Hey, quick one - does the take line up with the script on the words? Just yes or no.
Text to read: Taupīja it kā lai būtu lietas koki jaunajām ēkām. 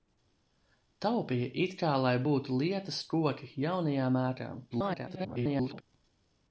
no